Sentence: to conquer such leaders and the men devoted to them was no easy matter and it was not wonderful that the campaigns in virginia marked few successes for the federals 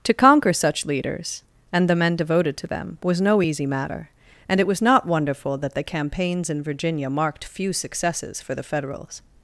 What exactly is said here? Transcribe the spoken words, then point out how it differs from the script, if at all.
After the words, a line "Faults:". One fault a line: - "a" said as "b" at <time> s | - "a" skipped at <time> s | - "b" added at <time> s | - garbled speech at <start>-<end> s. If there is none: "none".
to conquer such leaders and the men devoted to them was no easy matter and it was not wonderful that the campaigns in virginia marked few successes for the federals
Faults:
none